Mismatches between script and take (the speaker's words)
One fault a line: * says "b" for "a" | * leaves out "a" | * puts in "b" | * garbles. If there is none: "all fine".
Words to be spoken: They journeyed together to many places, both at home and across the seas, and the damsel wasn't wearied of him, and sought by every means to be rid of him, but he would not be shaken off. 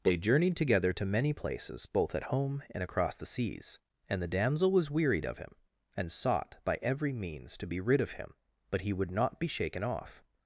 * says "was" for "wasn't"